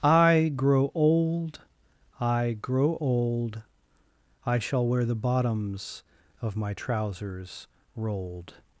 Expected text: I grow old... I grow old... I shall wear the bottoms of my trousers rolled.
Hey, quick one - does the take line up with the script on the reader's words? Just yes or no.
yes